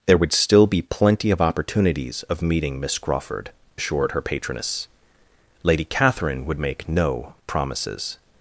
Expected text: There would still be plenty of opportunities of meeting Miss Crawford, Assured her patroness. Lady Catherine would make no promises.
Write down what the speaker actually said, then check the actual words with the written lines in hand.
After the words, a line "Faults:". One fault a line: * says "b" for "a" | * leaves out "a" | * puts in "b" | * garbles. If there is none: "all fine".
There would still be plenty of opportunities of meeting Miss Crawford, Assured her patroness. Lady Catherine would make no promises.
Faults:
all fine